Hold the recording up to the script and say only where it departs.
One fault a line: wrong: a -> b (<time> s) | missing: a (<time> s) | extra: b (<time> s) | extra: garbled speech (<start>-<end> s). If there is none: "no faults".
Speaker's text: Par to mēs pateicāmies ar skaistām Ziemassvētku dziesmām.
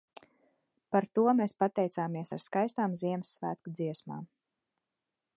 no faults